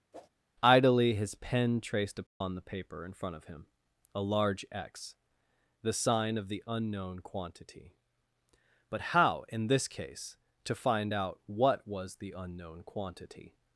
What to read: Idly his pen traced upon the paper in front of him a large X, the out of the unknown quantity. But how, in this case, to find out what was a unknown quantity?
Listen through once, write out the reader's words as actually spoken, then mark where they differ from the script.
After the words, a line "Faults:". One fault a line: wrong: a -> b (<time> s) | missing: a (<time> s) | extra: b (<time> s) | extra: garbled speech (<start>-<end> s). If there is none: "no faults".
Idly his pen traced upon the paper in front of him a large X, the sign of the unknown quantity. But how, in this case, to find out what was the unknown quantity?
Faults:
wrong: out -> sign (5.9 s)
wrong: a -> the (12.2 s)